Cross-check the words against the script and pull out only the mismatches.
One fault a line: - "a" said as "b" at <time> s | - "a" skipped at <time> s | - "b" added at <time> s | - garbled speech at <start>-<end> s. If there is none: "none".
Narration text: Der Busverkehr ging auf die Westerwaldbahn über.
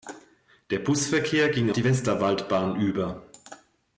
- "auf" skipped at 1.7 s